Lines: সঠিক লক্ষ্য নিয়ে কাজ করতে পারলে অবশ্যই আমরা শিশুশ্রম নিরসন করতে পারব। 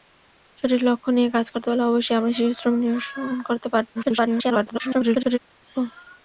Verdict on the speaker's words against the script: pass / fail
fail